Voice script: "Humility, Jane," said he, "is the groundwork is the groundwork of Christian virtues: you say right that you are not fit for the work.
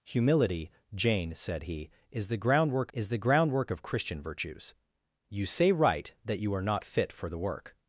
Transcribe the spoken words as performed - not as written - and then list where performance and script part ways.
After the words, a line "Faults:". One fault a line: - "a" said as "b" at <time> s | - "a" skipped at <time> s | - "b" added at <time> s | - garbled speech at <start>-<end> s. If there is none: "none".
"Humility, Jane," said he, "is the groundwork is the groundwork of Christian virtues: you say right that you are not fit for the work.
Faults:
none